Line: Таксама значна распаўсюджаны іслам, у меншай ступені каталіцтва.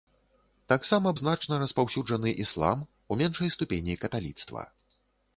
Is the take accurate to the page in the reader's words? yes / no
yes